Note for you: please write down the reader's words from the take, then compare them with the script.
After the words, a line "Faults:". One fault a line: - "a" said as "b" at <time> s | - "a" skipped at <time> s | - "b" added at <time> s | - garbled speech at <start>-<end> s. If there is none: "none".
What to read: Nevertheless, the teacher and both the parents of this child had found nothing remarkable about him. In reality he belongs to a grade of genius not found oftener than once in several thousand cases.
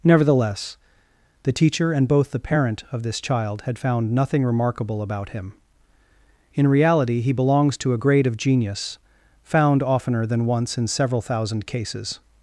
Nevertheless, the teacher and both the parent of this child had found nothing remarkable about him. In reality he belongs to a grade of genius found oftener than once in several thousand cases.
Faults:
- "parents" said as "parent" at 2.4 s
- "not" skipped at 9.0 s